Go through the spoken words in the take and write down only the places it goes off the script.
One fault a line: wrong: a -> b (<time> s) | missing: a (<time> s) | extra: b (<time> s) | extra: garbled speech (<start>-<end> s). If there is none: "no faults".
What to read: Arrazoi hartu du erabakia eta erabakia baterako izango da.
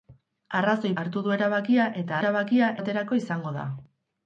no faults